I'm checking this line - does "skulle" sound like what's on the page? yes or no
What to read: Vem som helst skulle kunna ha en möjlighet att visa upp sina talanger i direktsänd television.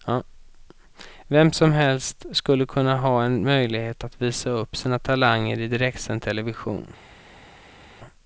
yes